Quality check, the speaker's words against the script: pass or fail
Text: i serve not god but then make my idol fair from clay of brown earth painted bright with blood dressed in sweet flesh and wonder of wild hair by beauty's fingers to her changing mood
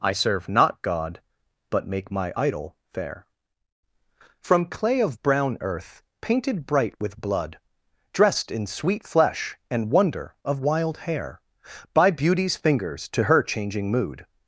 fail